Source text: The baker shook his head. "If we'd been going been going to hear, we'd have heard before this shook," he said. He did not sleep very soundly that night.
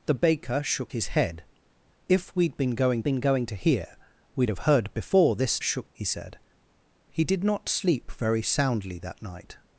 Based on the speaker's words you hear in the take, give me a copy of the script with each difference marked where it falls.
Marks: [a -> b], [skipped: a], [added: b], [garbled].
The baker shook his head. "If we'd been going been going to hear, we'd have heard before this shook," he said. He did not sleep very soundly that night.